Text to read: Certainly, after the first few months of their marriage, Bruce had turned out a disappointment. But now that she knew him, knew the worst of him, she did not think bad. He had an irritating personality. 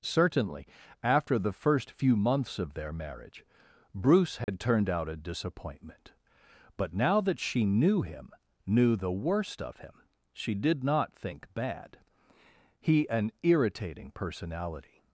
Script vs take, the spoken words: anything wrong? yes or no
yes